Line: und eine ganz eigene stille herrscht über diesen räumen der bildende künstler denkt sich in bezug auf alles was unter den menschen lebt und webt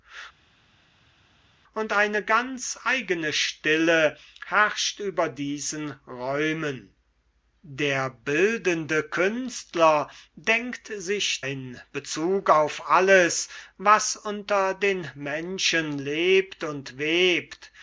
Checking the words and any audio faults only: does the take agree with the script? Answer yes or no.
yes